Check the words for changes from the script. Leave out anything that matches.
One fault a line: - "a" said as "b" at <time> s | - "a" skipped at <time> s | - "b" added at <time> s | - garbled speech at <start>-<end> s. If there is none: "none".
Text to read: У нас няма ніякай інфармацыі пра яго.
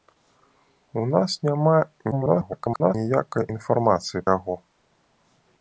- garbled speech at 2.1-2.9 s
- "пра" skipped at 4.3 s